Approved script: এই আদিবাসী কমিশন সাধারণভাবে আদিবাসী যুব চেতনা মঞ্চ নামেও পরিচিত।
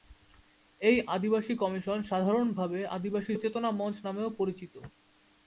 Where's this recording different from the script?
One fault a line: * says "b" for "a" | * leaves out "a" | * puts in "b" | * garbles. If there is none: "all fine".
* leaves out "যুব"